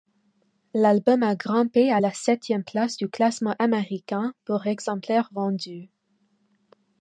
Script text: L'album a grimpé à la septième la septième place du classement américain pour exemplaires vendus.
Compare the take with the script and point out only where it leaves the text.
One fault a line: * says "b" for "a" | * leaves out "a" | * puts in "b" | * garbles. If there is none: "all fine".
* leaves out "la septième"